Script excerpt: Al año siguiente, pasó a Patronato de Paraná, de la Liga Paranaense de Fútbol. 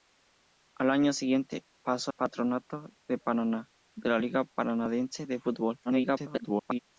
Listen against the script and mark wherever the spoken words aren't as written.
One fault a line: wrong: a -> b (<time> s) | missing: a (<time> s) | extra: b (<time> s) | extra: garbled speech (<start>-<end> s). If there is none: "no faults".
missing: a (2.1 s)
extra: garbled speech (5.8-6.8 s)